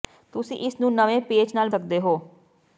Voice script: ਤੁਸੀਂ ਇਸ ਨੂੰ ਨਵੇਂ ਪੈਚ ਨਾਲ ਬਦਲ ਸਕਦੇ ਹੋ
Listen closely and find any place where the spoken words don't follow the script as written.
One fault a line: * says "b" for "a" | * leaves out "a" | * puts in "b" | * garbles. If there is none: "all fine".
* leaves out "ਬਦਲ"